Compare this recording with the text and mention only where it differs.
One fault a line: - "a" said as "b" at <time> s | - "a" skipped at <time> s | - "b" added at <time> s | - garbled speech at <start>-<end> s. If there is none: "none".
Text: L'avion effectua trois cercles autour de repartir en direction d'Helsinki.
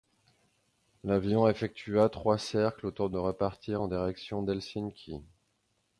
none